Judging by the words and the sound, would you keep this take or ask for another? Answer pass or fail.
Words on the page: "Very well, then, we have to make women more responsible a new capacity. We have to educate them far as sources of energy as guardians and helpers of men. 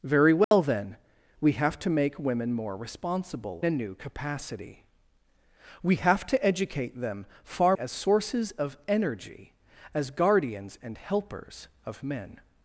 fail